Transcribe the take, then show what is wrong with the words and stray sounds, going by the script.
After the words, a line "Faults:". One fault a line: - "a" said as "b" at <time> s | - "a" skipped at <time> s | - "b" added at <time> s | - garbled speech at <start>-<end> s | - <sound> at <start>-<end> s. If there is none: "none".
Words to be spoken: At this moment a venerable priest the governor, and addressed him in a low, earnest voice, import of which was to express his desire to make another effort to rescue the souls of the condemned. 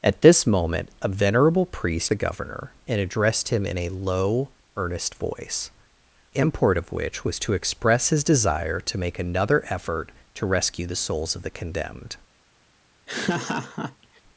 At this moment a venerable priest the governor, and addressed him in a low, earnest voice, import of which was to express his desire to make another effort to rescue the souls of the condemned.
Faults:
- laugh at 13.1-14.2 s